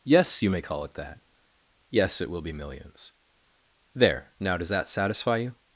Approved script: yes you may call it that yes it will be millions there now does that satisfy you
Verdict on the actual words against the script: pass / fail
pass